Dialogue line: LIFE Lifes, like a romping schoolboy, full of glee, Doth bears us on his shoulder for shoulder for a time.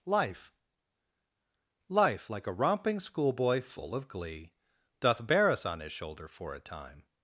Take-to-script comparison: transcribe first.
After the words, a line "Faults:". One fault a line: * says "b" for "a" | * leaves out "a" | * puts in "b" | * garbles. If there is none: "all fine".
LIFE Life, like a romping schoolboy, full of glee, Doth bear us on his shoulder for a time.
Faults:
* says "Life" for "Lifes"
* says "bear" for "bears"
* leaves out "shoulder for"